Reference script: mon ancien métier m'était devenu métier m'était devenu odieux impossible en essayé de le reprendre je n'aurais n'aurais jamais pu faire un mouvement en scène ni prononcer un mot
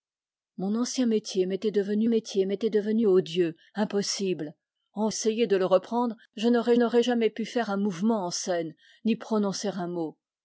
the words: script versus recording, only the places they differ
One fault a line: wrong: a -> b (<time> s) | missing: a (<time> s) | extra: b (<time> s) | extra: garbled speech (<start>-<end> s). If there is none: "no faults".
no faults